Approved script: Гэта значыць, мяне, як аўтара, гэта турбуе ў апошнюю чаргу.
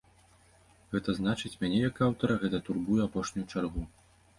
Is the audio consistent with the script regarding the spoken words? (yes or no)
yes